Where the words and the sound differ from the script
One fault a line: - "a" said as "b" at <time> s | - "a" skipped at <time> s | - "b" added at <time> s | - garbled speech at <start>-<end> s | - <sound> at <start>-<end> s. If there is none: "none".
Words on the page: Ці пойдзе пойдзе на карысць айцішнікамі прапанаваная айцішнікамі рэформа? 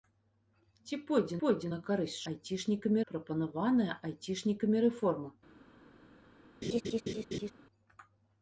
- laugh at 6.6-7.5 s